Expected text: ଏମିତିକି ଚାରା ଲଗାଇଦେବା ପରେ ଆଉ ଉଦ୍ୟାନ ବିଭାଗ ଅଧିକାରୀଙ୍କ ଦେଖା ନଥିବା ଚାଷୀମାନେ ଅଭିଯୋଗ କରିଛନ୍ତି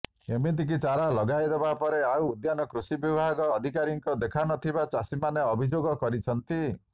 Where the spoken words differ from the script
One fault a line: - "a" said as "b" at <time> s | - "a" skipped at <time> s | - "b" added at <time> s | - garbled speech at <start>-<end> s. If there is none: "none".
- "କୃଷି" added at 2.7 s